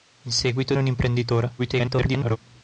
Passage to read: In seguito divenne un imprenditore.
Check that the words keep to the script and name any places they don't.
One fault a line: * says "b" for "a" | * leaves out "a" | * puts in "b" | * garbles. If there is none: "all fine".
* leaves out "divenne"
* garbles